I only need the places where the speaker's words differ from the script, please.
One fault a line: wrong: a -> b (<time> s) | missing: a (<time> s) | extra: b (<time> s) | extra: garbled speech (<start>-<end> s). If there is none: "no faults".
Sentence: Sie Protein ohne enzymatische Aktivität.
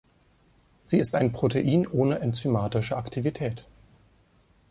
extra: ist ein (1.0 s)